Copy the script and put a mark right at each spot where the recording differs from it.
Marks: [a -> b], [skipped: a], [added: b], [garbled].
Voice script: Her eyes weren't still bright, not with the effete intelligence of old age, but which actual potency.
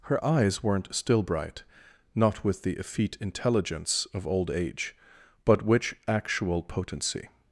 Her eyes weren't still bright, not with the effete intelligence of old age, but which actual potency.